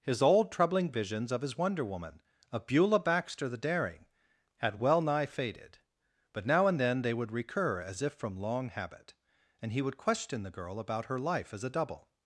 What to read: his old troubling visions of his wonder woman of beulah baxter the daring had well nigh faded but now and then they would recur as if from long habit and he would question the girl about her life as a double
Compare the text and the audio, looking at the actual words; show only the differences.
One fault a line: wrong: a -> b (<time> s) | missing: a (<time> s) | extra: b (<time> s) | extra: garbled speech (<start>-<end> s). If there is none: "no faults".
no faults